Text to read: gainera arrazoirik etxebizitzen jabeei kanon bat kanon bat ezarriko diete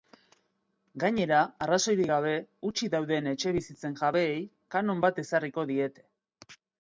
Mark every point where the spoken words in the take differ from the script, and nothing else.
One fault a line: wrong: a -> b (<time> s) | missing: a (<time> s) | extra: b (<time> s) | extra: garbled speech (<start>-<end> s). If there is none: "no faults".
extra: gabe hutsik dauden (2.1 s)
missing: kanon bat (5.2 s)